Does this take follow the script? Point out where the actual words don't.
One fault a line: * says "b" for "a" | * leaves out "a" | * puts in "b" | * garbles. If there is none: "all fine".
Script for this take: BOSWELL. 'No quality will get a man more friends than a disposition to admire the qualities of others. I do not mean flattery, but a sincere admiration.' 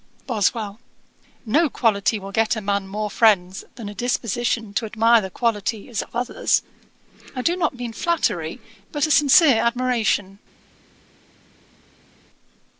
all fine